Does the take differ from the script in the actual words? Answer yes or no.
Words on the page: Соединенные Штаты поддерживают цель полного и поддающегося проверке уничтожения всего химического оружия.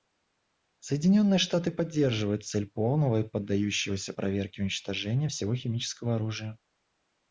no